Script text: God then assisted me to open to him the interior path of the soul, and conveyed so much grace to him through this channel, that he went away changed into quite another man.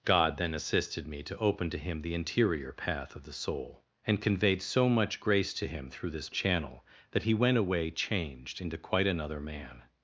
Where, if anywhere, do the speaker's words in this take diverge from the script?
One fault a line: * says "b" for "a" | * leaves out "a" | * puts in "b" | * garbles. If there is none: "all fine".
all fine